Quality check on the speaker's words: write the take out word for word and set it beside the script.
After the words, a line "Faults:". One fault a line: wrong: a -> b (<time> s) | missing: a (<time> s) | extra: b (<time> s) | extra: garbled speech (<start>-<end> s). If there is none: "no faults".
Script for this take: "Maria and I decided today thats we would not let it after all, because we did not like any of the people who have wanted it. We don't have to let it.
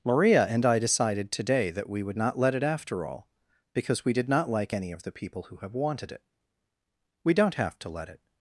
"Maria and I decided today that we would not let it after all, because we did not like any of the people who have wanted it. We don't have to let it.
Faults:
wrong: thats -> that (1.7 s)